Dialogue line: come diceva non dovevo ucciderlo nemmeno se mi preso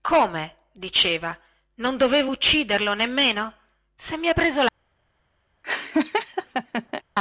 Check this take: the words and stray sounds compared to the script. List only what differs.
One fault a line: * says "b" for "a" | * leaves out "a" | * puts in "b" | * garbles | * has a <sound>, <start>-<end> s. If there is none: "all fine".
* has a laugh, 5.6-7.0 s